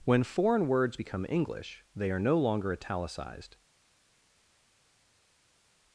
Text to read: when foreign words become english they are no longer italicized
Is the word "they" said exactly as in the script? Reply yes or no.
yes